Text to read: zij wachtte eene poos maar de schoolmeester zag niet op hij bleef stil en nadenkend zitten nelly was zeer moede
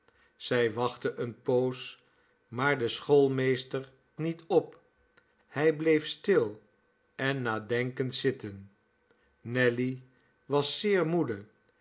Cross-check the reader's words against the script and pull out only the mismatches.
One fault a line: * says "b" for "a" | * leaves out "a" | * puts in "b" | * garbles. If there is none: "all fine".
* leaves out "zag"